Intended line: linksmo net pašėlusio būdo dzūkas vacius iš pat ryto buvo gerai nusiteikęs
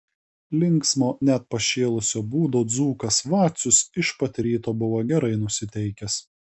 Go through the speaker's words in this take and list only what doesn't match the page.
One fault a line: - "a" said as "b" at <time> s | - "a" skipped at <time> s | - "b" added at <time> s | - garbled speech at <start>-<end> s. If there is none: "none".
none